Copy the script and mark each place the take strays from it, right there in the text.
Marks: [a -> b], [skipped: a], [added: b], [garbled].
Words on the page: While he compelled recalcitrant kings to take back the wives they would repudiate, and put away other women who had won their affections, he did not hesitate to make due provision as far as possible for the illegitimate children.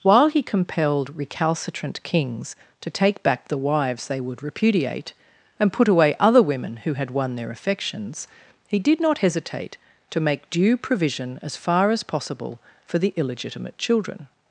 While he compelled recalcitrant kings to take back the wives they would repudiate, and put away other women who had won their affections, he did not hesitate to make due provision as far as possible for the illegitimate children.